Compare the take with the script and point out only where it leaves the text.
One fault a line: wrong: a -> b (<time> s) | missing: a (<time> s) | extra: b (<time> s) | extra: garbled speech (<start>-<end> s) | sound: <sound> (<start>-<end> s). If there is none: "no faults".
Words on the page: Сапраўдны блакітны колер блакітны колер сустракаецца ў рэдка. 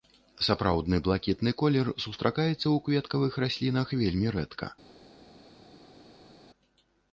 wrong: блакітны колер сустракаецца ў -> сустракаецца ў кветкавых раслінах вельмі (2.0 s)